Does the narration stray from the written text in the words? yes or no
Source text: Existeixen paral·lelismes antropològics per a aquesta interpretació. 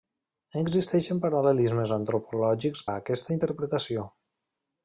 yes